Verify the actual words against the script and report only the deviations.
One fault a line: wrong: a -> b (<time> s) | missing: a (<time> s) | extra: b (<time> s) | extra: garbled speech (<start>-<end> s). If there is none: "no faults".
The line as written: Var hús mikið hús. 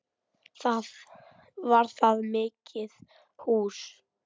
wrong: hús -> það (2.0 s)